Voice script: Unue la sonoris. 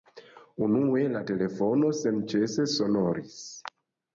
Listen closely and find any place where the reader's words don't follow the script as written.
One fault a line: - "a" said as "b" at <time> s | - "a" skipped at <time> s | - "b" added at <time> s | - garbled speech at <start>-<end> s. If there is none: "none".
- "telefono senĉese" added at 1.3 s